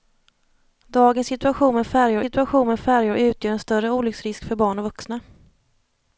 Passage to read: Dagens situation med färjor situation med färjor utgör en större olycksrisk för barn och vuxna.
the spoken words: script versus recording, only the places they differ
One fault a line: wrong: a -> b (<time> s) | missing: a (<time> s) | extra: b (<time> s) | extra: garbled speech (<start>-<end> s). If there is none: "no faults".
no faults